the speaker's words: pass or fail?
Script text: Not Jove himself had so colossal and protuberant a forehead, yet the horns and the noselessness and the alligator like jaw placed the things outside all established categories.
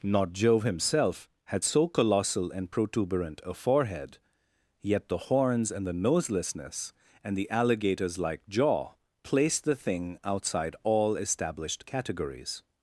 fail